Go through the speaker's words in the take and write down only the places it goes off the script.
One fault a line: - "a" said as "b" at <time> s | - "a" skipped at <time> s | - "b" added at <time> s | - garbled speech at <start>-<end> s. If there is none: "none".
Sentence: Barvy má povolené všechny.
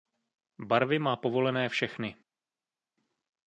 none